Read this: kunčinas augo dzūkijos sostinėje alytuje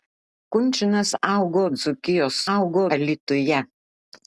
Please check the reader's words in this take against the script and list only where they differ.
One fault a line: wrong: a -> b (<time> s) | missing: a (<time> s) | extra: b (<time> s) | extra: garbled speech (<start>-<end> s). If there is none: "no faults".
wrong: sostinėje -> augo (2.5 s)